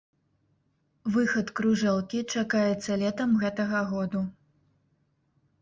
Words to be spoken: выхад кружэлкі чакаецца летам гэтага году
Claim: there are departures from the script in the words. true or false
false